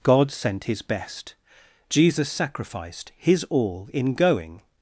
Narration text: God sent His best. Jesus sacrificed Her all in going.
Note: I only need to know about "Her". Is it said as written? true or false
false